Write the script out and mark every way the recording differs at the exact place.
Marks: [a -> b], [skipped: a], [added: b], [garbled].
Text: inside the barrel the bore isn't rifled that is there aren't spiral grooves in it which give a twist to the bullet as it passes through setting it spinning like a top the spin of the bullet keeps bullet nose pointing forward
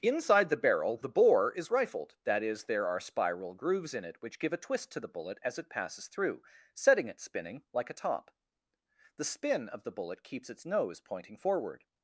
inside the barrel the bore [isn't -> is] rifled that is there [aren't -> are] spiral grooves in it which give a twist to the bullet as it passes through setting it spinning like a top the spin of the bullet keeps [bullet -> its] nose pointing forward